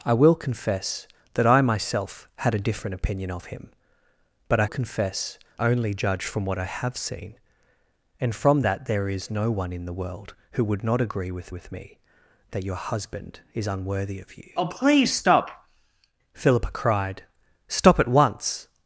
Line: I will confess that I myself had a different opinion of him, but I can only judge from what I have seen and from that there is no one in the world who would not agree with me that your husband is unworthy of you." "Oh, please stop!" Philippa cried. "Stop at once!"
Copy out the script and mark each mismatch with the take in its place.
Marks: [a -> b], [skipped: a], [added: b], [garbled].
I will confess that I myself had a different opinion of him, but I [can -> confess] only judge from what I have seen and from that there is no one in the world who would not agree with [added: with] me that your husband is unworthy of you." "Oh, please stop!" Philippa cried. "Stop at once!"